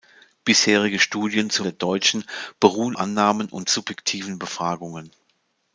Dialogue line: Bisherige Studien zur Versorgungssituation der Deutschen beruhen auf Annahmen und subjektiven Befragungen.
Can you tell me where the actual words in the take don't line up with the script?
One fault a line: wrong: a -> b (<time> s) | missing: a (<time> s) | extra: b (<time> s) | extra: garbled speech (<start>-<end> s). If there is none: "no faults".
missing: Versorgungssituation (1.7 s)
missing: auf (3.0 s)